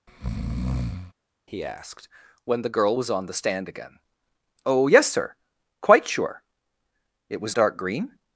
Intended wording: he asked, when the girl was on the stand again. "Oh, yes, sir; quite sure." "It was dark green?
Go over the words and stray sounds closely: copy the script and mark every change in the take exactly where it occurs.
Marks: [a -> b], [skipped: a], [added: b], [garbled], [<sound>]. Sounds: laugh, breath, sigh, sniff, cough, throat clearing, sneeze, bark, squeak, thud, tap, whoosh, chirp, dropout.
[breath] he asked, when the girl was on the stand again. "Oh, yes, sir; quite sure." "It was dark green?